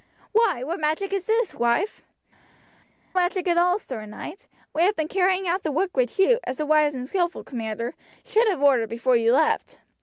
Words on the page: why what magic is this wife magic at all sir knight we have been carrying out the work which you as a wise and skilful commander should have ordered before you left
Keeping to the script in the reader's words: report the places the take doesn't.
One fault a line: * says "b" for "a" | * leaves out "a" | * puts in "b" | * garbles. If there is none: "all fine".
all fine